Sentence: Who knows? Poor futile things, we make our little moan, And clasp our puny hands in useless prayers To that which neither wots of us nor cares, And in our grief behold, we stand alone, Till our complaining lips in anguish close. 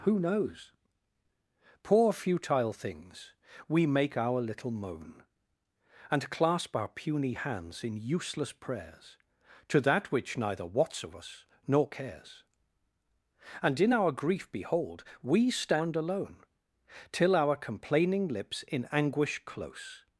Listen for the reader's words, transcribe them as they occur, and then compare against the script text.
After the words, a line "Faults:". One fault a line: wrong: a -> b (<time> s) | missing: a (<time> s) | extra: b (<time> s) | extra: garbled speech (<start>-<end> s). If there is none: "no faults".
Who knows? Poor futile things, we make our little moan, And clasp our puny hands in useless prayers To that which neither wots of us nor cares, And in our grief behold, we stand alone, Till our complaining lips in anguish close.
Faults:
no faults